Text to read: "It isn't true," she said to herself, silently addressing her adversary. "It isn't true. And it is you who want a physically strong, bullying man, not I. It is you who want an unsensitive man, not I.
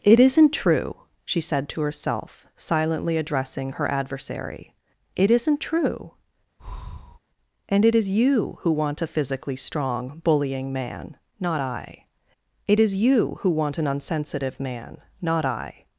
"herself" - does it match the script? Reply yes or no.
yes